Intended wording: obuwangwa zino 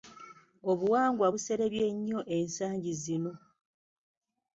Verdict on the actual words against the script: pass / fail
fail